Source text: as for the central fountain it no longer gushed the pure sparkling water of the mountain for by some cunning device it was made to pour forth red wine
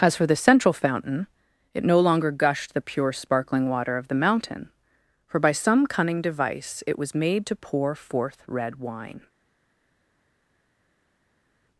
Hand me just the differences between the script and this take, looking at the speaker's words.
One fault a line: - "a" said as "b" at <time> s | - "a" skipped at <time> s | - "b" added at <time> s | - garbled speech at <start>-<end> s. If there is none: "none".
none